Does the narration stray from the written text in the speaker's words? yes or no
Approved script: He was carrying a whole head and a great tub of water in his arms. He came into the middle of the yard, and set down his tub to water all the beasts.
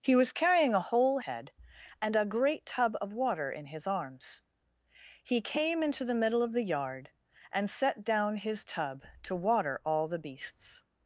no